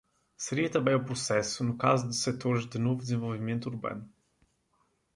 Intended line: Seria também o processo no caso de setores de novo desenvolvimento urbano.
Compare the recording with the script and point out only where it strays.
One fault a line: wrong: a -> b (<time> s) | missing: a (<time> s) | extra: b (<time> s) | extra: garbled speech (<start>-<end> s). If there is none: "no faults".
no faults